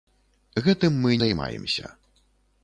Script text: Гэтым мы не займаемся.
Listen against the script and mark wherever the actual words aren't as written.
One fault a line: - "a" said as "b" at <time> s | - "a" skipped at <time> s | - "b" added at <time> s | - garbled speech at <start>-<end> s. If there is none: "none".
- "не" skipped at 1.1 s